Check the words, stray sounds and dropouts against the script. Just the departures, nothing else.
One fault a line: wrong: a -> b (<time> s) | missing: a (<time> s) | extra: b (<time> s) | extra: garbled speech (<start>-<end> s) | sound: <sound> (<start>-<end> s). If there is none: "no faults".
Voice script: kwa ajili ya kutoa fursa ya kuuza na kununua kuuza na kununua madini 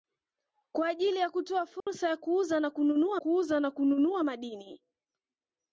sound: dropout (1.8-1.9 s)